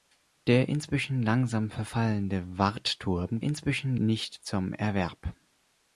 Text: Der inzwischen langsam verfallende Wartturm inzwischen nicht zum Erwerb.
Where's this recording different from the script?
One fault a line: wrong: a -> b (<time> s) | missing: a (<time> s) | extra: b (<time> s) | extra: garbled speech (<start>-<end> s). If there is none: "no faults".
no faults